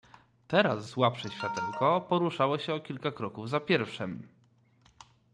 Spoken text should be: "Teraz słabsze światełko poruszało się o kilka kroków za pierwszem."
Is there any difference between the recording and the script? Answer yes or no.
no